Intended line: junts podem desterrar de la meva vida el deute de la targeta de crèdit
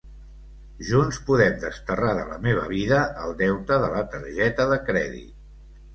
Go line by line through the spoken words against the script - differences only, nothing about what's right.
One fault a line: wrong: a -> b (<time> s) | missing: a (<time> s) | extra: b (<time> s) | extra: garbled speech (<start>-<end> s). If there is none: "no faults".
no faults